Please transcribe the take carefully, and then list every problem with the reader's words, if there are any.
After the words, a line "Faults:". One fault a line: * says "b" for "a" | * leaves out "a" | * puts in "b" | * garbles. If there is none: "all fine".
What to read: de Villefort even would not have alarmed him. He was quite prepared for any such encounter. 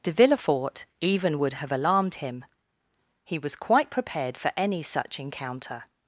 de Villefort even would have alarmed him. He was quite prepared for any such encounter.
Faults:
* leaves out "not"